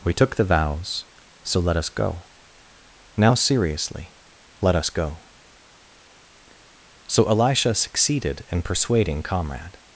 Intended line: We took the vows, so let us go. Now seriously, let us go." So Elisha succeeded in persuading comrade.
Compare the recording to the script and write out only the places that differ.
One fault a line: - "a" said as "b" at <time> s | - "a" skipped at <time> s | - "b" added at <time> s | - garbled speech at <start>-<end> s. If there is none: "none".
none